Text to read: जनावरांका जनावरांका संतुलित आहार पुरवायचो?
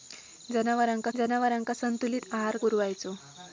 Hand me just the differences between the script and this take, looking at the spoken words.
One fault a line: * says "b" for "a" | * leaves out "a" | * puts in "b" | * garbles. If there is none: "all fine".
all fine